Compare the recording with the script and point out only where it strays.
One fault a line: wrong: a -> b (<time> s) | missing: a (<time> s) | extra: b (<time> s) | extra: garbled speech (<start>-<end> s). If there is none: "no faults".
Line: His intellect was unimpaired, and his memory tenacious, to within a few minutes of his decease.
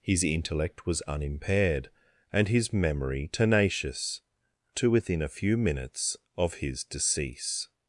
no faults